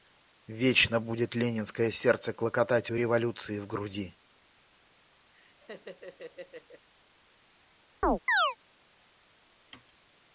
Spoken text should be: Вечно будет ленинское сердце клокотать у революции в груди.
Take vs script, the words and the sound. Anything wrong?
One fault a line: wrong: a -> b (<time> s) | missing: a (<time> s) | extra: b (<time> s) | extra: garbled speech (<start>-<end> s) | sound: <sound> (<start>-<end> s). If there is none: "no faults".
sound: laugh (5.3-6.9 s)
sound: chirp (8.0-8.6 s)